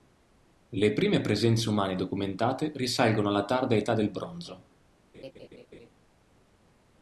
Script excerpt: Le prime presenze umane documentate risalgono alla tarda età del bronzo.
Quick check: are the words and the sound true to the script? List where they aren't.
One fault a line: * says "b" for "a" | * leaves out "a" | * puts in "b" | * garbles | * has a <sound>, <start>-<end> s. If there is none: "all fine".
* has a laugh, 5.1-5.9 s